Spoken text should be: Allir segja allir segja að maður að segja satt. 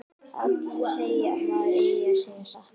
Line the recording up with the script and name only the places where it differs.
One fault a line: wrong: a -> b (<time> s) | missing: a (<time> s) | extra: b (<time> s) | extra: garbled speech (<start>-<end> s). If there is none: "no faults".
missing: allir segja (1.4 s)
extra: eigi (1.8 s)